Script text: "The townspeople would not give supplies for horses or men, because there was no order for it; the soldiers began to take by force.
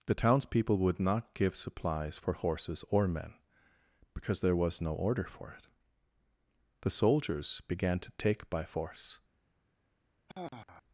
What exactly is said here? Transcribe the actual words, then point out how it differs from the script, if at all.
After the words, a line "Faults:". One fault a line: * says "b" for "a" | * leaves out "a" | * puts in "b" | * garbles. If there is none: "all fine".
"The townspeople would not give supplies for horses or men, because there was no order for it; the soldiers began to take by force.
Faults:
all fine